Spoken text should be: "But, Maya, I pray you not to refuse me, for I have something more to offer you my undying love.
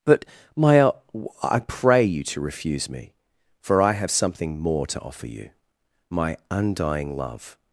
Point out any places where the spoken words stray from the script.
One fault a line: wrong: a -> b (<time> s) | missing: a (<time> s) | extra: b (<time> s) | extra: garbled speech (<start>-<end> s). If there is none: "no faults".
missing: not (2.2 s)